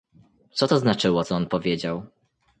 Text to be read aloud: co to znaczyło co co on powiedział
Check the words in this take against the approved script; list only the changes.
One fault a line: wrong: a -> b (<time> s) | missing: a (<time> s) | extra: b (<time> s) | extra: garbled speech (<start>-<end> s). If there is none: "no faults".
missing: co (1.4 s)